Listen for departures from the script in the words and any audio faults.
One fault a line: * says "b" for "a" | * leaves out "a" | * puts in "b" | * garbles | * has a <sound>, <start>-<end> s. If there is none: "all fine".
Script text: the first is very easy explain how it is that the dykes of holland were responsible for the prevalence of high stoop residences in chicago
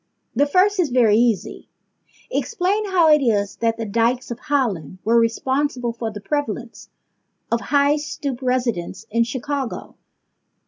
all fine